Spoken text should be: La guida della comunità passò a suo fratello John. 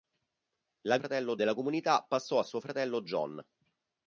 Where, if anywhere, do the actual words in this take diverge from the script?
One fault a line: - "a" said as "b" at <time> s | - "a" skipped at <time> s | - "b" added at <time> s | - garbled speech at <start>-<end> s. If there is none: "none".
- "guida" said as "fratello" at 0.9 s